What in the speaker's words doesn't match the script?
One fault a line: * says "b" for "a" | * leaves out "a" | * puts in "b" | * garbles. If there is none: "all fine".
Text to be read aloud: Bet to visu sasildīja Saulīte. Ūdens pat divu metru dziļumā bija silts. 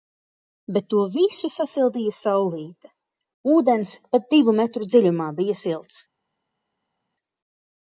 all fine